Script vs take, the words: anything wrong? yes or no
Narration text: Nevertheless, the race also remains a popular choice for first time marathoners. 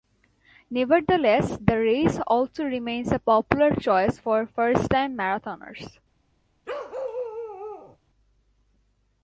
no